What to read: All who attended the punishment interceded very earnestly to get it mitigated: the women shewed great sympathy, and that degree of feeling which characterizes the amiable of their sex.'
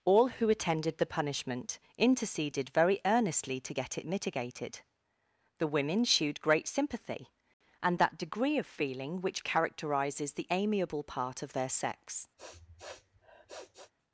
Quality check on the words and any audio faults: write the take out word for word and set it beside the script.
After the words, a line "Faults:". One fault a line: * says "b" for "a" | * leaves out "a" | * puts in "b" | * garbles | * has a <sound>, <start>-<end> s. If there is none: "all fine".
All who attended the punishment interceded very earnestly to get it mitigated: the women shewed great sympathy, and that degree of feeling which characterizes the amiable part of their sex.'
Faults:
* puts in "part"
* has a sniff, 12.4-13.9 s